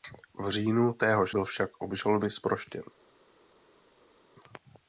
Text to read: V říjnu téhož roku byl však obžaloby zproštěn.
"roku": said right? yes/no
no